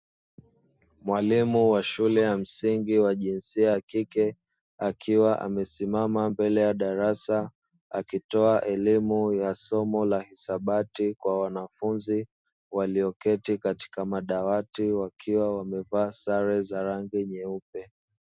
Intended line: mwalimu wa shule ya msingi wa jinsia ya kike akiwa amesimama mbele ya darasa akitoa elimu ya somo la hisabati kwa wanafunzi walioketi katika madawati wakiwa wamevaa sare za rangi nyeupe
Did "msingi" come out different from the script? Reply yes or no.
no